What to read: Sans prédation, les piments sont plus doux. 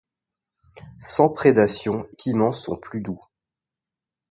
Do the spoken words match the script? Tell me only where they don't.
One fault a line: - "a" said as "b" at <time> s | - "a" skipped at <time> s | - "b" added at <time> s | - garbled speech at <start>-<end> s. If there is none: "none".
- "les" skipped at 2.1 s